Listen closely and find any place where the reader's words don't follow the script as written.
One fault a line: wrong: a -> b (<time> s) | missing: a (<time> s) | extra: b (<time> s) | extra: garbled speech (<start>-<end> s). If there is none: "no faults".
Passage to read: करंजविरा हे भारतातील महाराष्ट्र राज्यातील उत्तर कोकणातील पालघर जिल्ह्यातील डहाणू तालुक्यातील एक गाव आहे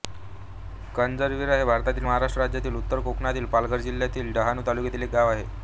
no faults